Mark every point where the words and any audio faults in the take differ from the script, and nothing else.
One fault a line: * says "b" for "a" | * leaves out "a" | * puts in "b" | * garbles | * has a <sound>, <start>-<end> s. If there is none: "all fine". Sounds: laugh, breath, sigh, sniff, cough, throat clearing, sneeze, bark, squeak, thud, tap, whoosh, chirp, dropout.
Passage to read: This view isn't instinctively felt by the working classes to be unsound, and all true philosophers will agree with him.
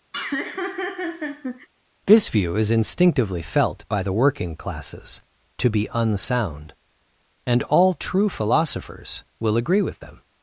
* has a laugh, 0.1-1.7 s
* says "is" for "isn't"
* says "them" for "him"